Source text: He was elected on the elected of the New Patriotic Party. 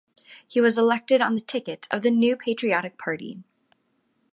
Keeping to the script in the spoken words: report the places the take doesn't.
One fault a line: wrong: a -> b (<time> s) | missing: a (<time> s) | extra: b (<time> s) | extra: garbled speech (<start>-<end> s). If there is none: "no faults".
wrong: elected -> ticket (1.4 s)